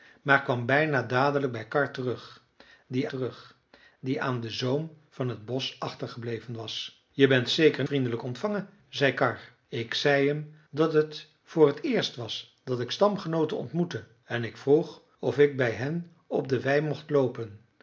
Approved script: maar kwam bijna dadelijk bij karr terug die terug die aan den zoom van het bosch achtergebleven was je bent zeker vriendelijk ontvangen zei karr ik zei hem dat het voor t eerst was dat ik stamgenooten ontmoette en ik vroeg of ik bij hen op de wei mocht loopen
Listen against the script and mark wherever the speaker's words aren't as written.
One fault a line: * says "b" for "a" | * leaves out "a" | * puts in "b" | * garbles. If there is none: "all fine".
all fine